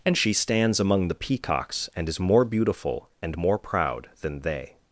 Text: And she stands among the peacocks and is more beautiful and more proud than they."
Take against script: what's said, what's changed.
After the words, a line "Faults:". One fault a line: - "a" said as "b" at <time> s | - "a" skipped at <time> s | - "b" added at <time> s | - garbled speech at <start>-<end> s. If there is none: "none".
And she stands among the peacocks and is more beautiful and more proud than they."
Faults:
none